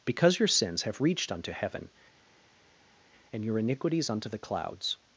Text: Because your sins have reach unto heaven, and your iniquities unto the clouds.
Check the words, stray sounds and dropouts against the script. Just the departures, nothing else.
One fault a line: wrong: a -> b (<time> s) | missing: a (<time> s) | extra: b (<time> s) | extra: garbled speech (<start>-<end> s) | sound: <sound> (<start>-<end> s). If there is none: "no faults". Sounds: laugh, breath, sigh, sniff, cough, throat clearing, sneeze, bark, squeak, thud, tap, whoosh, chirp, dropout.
wrong: reach -> reached (1.0 s)